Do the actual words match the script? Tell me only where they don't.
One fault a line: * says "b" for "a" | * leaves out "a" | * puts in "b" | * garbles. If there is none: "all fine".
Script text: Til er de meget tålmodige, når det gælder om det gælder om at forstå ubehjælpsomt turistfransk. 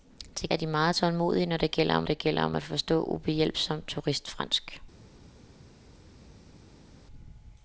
all fine